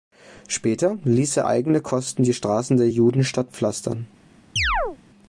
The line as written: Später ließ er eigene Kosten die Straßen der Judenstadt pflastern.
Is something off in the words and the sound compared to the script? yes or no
yes